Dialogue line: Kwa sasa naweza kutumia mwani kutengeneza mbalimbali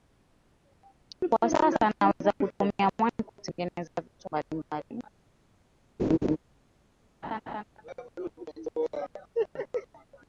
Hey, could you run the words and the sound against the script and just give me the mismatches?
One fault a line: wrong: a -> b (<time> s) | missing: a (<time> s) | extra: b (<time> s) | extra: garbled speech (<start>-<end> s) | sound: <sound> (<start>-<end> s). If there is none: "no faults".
extra: vitu (4.0 s)
sound: laugh (6.0-6.4 s)
sound: laugh (7.2-7.6 s)